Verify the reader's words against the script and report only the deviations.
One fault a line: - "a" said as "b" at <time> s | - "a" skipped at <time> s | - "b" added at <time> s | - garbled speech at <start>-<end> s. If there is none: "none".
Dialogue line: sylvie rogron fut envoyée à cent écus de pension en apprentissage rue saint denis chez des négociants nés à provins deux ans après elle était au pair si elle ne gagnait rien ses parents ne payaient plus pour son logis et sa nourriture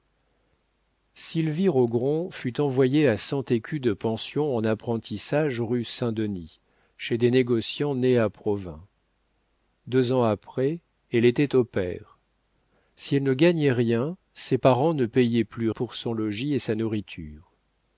none